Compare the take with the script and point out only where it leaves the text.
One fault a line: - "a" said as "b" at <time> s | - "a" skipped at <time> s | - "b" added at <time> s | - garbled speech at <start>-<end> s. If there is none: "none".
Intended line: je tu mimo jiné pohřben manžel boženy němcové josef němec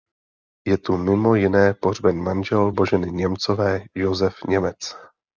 none